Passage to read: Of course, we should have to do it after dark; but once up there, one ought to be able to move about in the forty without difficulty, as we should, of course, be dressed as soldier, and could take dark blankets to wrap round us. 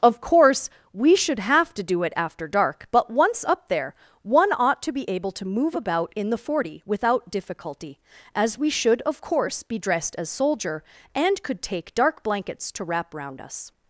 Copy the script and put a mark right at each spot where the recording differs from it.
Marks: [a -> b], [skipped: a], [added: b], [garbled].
Of course, we should have to do it after dark; but once up there, one ought to be able to move about in the forty without difficulty, as we should, of course, be dressed as soldier, and could take dark blankets to wrap round us.